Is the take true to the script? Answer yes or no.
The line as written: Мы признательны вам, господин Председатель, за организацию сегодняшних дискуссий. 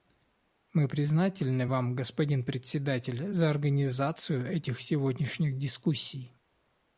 no